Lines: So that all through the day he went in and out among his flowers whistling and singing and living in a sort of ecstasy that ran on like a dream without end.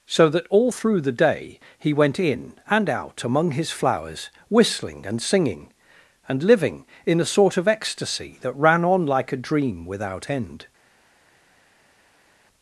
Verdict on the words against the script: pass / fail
pass